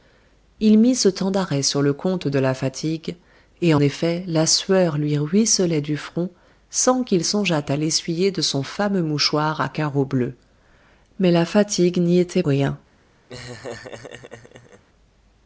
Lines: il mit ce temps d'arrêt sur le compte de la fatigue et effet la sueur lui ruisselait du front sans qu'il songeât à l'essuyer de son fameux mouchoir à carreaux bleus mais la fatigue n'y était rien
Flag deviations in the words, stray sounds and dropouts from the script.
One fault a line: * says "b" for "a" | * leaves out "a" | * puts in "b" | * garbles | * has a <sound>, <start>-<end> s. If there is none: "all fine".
* has a laugh, 13.3-14.8 s